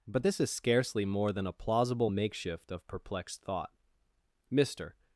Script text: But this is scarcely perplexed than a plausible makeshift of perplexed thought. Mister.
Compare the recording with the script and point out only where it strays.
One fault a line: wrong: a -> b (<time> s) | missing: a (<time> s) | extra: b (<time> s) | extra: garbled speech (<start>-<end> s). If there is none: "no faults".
wrong: perplexed -> more (1.0 s)